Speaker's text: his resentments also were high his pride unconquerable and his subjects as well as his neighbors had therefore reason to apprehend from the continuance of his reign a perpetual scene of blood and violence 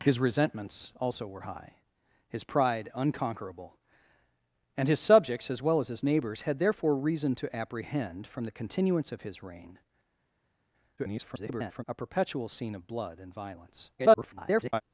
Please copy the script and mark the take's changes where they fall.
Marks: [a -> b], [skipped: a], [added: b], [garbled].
his resentments also were high his pride unconquerable and his subjects as well as his neighbors had therefore reason to apprehend from the continuance of his reign [garbled] a perpetual scene of blood and violence [garbled]